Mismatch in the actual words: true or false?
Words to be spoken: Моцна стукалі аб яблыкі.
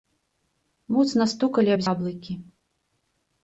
false